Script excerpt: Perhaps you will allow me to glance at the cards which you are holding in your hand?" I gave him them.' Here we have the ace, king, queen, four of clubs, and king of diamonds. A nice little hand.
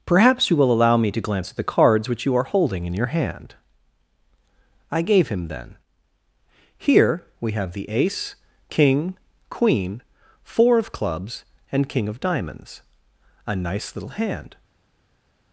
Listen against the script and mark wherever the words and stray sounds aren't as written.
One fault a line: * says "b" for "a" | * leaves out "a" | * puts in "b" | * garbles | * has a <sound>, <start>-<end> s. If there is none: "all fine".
* says "then" for "them"